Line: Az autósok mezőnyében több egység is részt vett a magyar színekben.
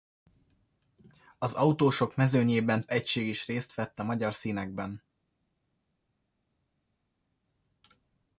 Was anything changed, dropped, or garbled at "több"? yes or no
yes